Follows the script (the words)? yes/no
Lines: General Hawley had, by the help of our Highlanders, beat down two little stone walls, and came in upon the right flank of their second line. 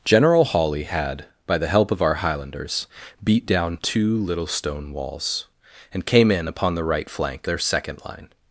no